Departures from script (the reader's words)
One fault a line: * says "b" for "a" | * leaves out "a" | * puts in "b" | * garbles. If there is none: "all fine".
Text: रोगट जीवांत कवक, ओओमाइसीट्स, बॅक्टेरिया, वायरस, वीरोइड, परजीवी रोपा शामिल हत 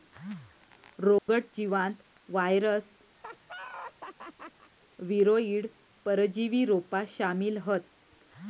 * leaves out "कवक ओओमाइसीट्स बॅक्टेरिया"